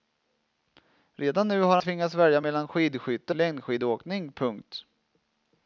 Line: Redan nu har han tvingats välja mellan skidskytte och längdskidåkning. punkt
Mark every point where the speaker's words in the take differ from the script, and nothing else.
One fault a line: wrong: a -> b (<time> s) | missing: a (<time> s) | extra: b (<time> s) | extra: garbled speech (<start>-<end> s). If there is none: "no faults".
missing: han (1.8 s)
missing: och (3.4 s)